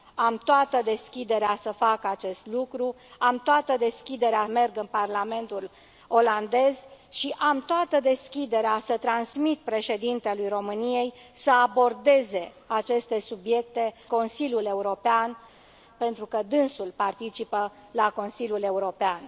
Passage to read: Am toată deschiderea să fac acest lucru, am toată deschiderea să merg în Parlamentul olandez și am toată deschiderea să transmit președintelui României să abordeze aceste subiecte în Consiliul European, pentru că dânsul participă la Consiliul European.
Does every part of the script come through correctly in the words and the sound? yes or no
no